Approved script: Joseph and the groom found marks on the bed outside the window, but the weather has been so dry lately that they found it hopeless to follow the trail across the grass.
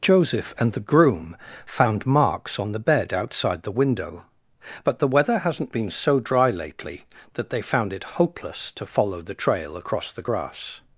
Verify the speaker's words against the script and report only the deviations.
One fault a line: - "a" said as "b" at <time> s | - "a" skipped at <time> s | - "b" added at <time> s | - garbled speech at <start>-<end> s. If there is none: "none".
- "has" said as "hasn't" at 5.4 s